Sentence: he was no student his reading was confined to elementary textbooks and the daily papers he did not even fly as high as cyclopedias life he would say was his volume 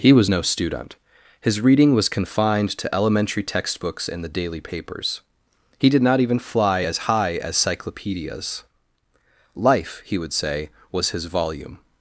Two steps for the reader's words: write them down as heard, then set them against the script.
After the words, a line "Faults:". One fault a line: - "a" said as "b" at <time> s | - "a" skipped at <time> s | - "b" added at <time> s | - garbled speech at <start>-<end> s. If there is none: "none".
he was no student his reading was confined to elementary textbooks and the daily papers he did not even fly as high as cyclopedias life he would say was his volume
Faults:
none